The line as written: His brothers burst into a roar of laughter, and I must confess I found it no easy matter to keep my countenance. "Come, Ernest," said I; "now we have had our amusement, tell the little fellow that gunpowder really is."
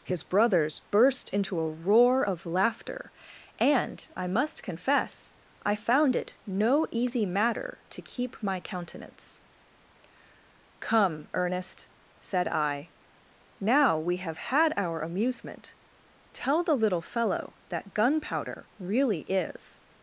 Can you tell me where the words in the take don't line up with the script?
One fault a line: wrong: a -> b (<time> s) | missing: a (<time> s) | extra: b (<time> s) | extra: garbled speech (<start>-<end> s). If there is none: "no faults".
no faults